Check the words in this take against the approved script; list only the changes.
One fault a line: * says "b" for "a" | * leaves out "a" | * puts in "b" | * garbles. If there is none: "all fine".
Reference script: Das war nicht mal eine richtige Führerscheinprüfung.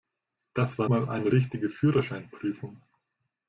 * leaves out "nicht"